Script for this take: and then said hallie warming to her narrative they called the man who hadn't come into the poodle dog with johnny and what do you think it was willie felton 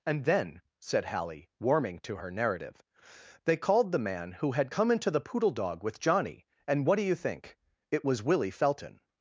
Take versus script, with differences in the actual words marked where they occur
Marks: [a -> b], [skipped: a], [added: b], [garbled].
and then said hallie warming to her narrative they called the man who [hadn't -> had] come into the poodle dog with johnny and what do you think it was willie felton